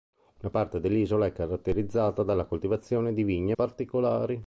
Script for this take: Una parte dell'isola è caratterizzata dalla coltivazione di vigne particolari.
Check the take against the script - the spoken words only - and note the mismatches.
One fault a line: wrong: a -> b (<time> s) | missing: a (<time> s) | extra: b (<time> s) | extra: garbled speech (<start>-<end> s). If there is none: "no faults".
no faults